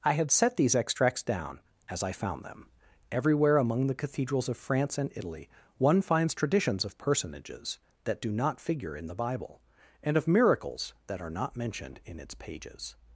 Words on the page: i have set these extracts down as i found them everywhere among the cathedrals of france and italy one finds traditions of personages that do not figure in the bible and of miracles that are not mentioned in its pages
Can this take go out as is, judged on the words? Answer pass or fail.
fail